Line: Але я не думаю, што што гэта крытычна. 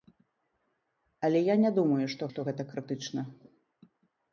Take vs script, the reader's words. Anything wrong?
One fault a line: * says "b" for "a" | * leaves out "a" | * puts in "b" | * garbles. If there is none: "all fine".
all fine